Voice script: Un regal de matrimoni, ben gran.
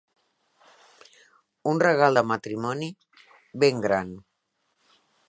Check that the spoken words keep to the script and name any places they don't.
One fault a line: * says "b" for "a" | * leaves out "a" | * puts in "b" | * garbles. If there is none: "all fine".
all fine